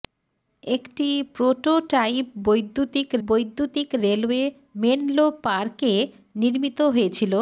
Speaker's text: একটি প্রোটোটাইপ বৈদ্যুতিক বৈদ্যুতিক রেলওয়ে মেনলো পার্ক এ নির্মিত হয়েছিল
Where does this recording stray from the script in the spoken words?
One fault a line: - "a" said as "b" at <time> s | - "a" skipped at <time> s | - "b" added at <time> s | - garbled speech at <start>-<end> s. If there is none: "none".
none